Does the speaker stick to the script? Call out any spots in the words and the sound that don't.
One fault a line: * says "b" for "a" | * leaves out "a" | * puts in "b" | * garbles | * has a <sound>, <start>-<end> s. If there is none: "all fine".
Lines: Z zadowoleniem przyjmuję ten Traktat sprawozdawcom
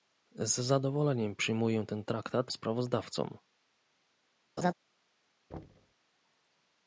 * has a laugh, 4.6-4.7 s
* has a thud, 5.5-5.9 s